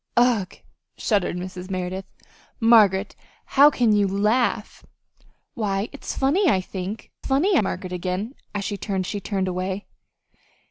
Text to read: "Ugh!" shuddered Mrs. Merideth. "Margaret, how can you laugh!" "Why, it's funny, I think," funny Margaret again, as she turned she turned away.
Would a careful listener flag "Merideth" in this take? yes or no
no